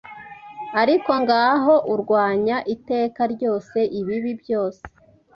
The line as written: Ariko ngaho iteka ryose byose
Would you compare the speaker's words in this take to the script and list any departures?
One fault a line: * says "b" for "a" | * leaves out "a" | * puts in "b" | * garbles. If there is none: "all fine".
* puts in "urwanya"
* puts in "ibibi"